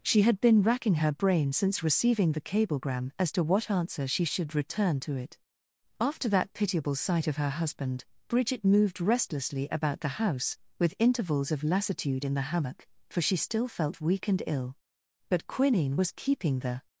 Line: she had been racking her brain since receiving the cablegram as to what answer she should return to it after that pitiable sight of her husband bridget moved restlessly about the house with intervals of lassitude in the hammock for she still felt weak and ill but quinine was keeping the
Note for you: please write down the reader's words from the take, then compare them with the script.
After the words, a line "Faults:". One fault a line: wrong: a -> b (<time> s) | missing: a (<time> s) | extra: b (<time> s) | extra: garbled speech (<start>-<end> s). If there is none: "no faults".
she had been racking her brain since receiving the cablegram as to what answer she should return to it after that pitiable sight of her husband bridget moved restlessly about the house with intervals of lassitude in the hammock for she still felt weak and ill but quinine was keeping the
Faults:
no faults